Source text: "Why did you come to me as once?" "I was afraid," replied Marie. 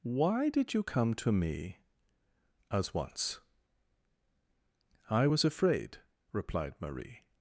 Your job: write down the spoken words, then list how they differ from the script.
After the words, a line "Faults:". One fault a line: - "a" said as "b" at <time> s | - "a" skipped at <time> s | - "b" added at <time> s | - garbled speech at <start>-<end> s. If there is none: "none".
"Why did you come to me as once?" "I was afraid," replied Marie.
Faults:
none